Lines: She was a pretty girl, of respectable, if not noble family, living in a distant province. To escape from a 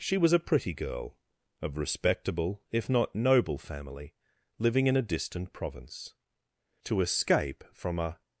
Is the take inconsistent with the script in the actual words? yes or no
no